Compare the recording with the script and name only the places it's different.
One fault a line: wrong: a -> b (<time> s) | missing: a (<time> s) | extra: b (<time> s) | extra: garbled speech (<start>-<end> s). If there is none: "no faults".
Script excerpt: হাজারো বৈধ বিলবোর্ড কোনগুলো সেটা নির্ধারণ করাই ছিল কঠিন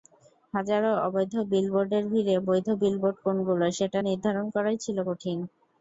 extra: অবৈধ বিলবোর্ডের ভিড়ে (1.1 s)